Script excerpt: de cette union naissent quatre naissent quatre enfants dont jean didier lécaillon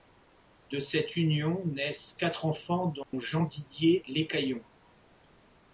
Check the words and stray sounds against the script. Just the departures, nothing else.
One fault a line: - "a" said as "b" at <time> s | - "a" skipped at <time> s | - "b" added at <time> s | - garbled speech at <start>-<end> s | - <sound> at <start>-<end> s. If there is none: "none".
- "naissent quatre" skipped at 2.5 s
- dropout at 3.0-3.1 s